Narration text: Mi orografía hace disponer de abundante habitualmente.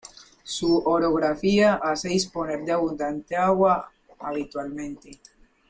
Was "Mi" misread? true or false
true